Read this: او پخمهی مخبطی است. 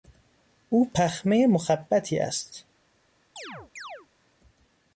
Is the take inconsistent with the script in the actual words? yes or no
no